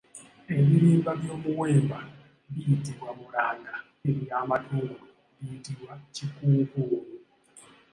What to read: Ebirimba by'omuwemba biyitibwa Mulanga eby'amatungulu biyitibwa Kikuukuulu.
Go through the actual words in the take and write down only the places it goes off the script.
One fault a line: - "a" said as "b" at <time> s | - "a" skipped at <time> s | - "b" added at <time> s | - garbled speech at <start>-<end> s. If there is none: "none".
none